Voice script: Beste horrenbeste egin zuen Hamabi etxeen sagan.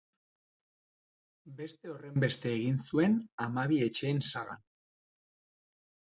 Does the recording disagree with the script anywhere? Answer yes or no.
no